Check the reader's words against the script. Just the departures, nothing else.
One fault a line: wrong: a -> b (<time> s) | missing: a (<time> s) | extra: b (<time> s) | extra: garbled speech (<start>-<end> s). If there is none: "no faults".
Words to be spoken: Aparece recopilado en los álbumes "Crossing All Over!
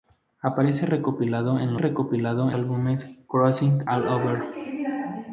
wrong: los -> recopilado (1.8 s)